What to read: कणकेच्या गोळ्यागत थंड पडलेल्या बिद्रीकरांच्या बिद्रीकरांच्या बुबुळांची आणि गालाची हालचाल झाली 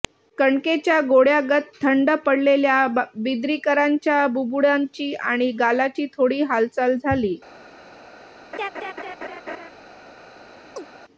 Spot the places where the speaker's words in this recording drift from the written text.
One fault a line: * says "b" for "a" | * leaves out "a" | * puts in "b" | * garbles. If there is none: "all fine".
* leaves out "बिद्रीकरांच्या"
* puts in "थोडी"